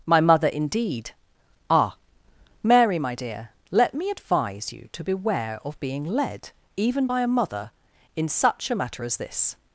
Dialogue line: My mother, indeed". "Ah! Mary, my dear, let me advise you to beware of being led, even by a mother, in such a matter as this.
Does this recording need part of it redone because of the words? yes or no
no